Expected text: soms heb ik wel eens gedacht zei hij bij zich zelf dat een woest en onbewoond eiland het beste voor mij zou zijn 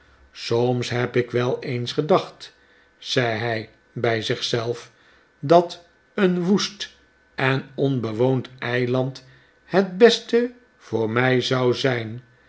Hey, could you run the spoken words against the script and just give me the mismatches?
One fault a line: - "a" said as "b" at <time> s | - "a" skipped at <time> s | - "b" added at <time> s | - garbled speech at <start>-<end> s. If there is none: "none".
none